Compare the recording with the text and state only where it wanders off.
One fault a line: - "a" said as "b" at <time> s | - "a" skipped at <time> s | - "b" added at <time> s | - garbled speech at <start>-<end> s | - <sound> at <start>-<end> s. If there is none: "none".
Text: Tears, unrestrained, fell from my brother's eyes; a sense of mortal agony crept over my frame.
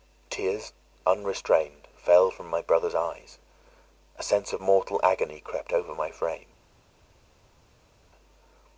none